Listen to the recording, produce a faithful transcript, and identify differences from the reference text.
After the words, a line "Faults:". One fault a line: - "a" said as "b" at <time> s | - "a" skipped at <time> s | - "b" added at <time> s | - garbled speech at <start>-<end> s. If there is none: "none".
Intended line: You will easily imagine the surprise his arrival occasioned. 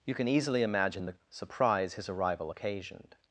You can easily imagine the surprise his arrival occasioned.
Faults:
- "will" said as "can" at 0.1 s